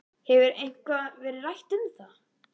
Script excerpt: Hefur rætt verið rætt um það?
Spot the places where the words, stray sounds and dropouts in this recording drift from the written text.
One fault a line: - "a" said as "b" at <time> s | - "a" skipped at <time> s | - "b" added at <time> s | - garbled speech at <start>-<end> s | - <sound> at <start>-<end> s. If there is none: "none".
- "rætt" said as "eitthvað" at 0.6 s